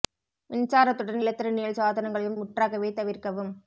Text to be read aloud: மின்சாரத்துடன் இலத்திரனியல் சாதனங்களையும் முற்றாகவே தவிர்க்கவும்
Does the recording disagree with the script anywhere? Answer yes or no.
no